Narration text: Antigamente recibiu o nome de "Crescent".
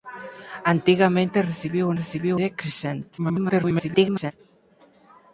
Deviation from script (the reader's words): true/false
true